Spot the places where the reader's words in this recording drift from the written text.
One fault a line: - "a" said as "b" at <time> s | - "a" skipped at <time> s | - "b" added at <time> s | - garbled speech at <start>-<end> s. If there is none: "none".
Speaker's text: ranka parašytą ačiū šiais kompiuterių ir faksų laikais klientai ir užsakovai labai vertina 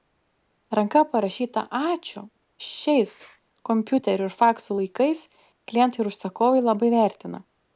none